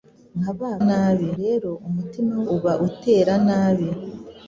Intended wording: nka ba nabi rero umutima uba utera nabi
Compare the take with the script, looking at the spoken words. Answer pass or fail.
pass